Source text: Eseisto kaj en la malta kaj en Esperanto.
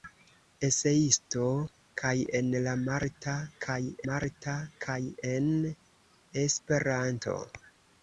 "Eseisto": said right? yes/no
yes